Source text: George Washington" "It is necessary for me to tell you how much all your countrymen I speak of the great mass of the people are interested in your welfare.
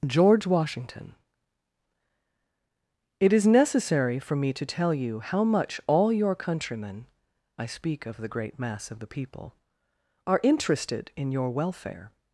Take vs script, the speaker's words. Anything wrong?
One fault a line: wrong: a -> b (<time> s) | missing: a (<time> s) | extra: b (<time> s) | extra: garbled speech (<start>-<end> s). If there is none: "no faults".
no faults